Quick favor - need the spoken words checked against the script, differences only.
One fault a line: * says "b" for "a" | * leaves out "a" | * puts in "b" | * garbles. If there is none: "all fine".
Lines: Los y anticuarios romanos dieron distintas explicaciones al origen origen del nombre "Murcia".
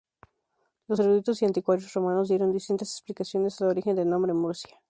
* puts in "eruditos"
* leaves out "origen"